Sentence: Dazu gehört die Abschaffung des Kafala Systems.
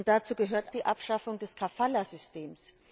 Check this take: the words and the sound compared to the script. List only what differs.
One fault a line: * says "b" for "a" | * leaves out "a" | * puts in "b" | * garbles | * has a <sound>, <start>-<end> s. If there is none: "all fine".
all fine